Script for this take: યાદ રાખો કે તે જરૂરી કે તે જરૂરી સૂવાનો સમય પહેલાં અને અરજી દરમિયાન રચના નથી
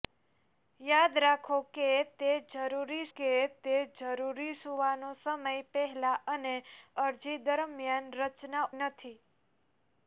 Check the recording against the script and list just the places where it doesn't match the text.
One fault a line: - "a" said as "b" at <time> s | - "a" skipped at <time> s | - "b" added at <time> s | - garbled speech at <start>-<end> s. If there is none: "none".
none